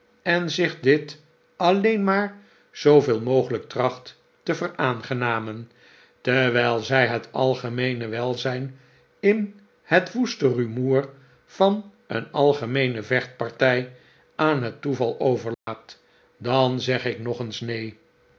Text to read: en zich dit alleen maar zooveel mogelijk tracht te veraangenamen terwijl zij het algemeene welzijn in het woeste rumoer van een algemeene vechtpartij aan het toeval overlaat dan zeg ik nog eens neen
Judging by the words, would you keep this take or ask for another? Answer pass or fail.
pass